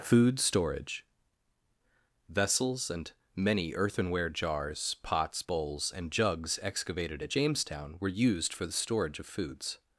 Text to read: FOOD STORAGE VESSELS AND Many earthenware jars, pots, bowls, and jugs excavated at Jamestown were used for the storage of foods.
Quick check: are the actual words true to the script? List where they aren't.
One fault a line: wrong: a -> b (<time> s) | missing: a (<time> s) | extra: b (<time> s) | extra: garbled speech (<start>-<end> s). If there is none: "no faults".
no faults